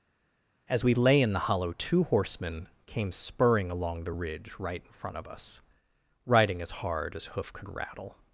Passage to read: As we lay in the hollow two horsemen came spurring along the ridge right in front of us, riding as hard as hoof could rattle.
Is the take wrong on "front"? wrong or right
right